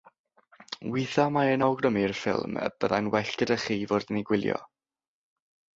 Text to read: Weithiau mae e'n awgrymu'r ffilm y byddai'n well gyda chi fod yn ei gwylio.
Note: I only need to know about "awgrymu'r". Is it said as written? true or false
true